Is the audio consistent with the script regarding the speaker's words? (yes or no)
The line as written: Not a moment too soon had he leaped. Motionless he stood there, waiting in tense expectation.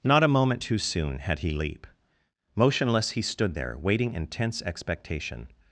no